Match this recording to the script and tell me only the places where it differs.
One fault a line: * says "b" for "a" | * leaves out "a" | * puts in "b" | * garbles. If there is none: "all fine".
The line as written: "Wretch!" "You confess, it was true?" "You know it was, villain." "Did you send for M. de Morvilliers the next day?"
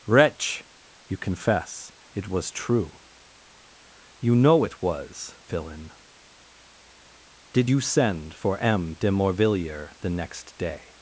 all fine